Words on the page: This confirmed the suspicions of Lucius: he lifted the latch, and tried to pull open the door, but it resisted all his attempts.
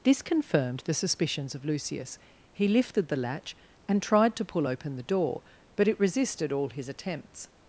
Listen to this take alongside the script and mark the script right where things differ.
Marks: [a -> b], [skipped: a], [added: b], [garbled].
This confirmed the suspicions of Lucius: he lifted the latch, and tried to pull open the door, but it resisted all his attempts.